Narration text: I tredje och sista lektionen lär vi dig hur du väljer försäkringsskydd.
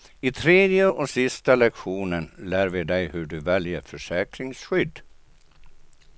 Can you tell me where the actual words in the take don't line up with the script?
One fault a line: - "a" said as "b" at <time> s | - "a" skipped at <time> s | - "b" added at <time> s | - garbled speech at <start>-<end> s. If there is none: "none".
none